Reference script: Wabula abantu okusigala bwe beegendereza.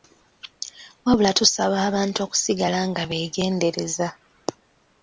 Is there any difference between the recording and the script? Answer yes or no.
yes